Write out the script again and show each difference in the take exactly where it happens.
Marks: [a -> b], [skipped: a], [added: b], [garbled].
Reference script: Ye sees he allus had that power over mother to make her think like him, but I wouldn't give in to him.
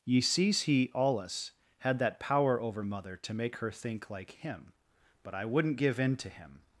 Ye sees he allus had that power over mother to make her think like him, but I wouldn't give in to him.